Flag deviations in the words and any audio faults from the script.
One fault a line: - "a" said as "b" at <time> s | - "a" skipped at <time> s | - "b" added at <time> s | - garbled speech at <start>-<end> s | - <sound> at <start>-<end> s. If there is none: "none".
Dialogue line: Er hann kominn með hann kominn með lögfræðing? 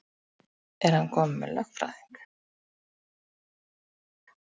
- "hann kominn með" skipped at 1.5 s